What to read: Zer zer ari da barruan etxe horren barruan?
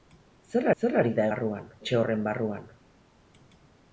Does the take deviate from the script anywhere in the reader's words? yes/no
no